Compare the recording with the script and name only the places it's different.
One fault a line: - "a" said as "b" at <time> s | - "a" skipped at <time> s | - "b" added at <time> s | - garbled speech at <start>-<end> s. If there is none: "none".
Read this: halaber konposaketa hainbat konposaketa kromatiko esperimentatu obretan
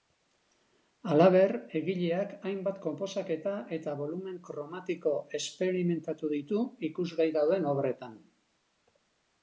- "konposaketa" said as "egileak" at 1.8 s
- "eta bolumen" added at 3.8 s
- "ditu ikusgai dauden" added at 6.3 s